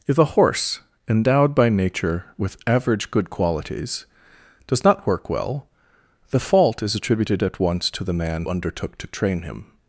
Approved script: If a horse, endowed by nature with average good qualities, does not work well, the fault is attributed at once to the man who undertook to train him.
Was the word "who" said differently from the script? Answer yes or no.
yes